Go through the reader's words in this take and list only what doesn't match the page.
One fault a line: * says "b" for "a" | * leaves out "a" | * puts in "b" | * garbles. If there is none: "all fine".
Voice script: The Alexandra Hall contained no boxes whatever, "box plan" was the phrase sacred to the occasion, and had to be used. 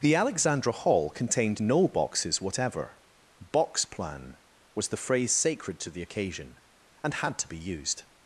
all fine